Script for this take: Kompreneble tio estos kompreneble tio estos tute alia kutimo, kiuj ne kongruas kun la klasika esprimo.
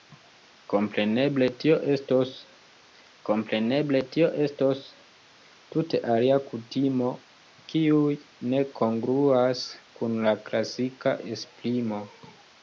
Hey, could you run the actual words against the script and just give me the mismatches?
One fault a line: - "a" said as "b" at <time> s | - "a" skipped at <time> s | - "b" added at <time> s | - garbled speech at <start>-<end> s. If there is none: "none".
none